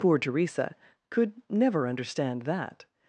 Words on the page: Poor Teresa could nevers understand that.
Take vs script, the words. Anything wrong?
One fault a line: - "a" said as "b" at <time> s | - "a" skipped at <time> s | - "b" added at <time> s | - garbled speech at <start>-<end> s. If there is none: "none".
- "nevers" said as "never" at 1.5 s